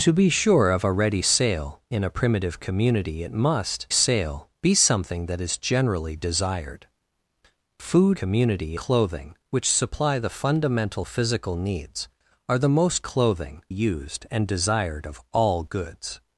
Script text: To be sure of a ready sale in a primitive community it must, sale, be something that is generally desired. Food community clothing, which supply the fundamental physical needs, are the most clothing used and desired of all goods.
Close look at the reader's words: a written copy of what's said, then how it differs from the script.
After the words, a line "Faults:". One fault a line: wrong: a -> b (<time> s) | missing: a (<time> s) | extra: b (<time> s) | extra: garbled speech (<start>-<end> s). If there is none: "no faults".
To be sure of a ready sale in a primitive community it must, sale, be something that is generally desired. Food community clothing, which supply the fundamental physical needs, are the most clothing used and desired of all goods.
Faults:
no faults